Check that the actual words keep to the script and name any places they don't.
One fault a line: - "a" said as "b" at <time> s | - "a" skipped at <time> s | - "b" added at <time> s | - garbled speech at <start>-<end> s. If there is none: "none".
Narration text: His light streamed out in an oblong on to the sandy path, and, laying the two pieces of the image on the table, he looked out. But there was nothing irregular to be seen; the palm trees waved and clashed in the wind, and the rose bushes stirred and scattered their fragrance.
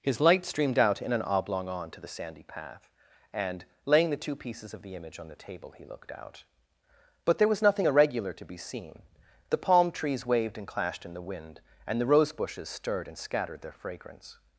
none